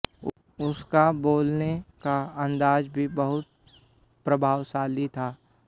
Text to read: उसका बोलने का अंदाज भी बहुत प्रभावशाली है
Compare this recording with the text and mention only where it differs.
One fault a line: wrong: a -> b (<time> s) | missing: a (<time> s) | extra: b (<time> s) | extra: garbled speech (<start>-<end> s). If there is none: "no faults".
wrong: है -> था (5.1 s)